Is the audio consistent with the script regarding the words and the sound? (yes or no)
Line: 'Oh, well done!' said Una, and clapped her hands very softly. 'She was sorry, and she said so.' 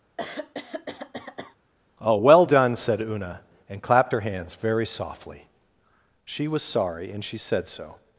no